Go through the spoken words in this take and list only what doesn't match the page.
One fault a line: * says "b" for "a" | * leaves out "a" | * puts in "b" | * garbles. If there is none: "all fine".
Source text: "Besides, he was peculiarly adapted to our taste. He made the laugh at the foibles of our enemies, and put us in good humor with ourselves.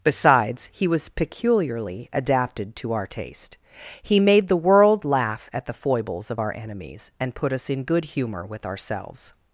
* puts in "world"